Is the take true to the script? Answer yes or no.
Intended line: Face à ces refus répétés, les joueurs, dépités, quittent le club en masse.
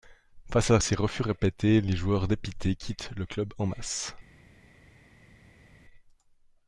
yes